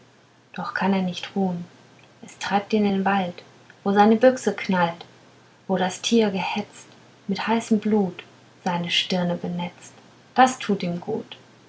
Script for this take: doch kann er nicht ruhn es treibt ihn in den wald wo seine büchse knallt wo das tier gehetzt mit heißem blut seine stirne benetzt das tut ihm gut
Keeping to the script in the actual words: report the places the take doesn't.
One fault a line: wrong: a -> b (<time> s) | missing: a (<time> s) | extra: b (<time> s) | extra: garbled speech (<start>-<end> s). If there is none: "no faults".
no faults